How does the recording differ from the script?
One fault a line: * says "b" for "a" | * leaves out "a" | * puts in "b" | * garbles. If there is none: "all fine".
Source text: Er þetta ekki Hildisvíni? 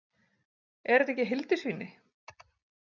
all fine